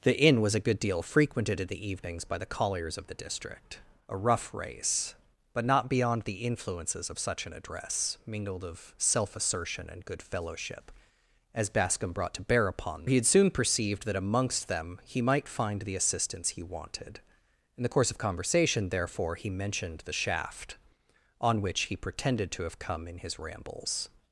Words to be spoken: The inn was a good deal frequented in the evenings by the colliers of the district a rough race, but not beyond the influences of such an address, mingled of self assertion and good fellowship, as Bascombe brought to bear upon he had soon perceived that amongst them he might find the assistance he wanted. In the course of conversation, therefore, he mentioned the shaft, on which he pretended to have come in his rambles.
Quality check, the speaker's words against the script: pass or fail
pass